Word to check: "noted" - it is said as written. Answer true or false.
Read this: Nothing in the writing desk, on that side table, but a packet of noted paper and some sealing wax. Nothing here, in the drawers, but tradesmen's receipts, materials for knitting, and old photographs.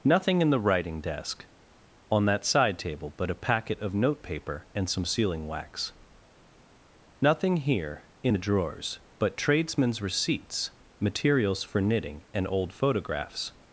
false